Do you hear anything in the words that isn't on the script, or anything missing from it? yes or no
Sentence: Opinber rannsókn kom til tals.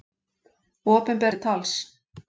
yes